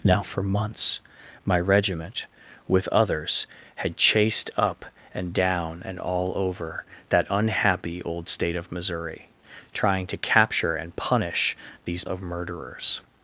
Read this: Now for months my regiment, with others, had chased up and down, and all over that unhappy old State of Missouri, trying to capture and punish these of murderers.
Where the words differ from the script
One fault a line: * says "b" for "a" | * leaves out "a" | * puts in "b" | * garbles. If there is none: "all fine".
all fine